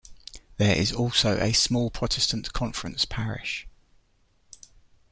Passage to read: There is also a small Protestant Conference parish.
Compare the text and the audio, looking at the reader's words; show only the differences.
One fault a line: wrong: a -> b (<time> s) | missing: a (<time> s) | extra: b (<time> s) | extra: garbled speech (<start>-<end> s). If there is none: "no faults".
no faults